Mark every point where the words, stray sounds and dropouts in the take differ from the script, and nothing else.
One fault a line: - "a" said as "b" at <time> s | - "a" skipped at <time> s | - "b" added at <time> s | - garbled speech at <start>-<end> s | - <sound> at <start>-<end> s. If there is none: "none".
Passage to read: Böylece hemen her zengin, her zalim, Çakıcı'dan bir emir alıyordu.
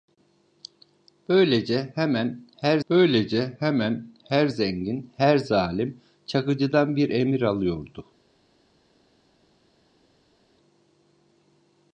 - "böylece hemen her" added at 2.9 s